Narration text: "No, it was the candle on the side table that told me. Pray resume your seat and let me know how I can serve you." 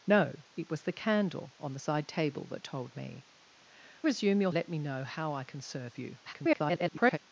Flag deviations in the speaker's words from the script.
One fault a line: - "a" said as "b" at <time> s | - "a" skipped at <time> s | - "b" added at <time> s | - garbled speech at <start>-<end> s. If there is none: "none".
- "Pray" skipped at 3.2 s
- "seat and" skipped at 4.5 s
- garbled speech at 6.2-7.2 s